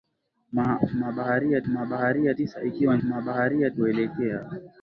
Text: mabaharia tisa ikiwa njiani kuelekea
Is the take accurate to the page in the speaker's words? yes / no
no